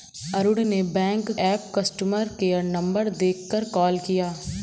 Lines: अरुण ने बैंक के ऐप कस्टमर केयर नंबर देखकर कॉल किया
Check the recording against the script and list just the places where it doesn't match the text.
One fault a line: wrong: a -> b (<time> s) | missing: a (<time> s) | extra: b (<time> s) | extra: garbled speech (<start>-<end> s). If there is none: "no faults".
missing: के (1.3 s)